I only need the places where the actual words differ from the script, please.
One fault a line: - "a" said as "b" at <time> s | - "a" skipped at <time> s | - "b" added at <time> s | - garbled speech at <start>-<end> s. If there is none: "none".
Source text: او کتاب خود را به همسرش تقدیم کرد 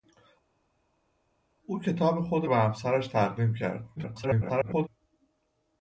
- "را" skipped at 2.5 s
- garbled speech at 4.0-4.9 s